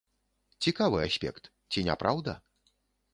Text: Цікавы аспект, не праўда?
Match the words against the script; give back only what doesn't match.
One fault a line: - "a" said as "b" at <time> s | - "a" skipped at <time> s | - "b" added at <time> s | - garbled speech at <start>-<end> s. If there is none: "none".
- "ці" added at 1.7 s